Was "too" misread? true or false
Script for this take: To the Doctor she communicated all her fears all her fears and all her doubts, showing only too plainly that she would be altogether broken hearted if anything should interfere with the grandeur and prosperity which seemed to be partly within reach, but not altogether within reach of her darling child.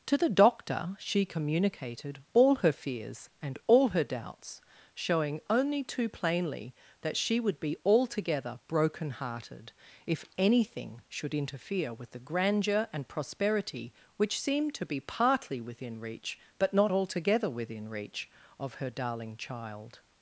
false